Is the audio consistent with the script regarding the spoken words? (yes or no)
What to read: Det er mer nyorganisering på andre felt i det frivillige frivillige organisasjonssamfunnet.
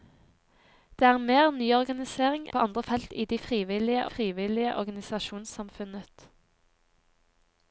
yes